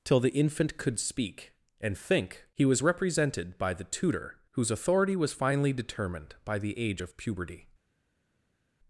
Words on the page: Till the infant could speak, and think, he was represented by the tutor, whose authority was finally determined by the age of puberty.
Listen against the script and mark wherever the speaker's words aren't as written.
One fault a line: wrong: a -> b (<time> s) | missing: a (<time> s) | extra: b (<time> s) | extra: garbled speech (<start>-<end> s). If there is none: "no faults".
no faults